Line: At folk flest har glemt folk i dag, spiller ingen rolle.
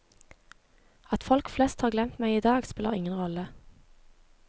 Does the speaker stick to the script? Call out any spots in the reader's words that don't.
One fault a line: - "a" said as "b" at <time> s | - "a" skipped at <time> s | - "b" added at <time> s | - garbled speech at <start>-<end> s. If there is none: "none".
- "folk" said as "meg" at 2.2 s